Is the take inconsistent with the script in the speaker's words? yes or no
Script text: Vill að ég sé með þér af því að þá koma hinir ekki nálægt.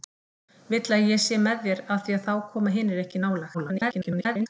yes